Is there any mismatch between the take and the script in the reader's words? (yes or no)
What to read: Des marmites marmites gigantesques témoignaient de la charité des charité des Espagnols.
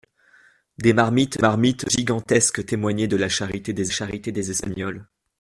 no